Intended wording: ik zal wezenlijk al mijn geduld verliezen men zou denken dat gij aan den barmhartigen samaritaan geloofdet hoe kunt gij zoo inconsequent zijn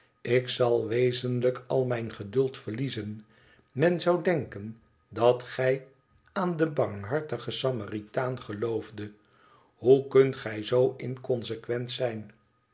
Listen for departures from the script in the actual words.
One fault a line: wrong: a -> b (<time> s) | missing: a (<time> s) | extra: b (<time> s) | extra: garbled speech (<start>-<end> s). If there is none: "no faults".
no faults